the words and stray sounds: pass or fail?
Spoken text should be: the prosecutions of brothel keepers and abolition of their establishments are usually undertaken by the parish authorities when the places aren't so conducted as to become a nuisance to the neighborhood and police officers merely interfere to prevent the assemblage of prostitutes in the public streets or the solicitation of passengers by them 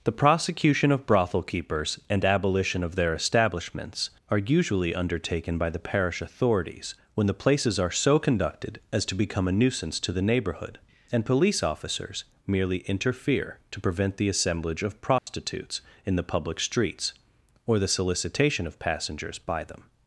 fail